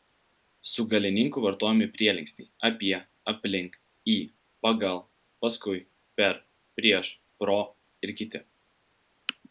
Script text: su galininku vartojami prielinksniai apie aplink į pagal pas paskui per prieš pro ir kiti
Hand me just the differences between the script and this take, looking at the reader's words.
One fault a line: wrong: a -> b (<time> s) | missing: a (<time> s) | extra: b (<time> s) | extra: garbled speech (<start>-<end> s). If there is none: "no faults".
missing: pas (5.0 s)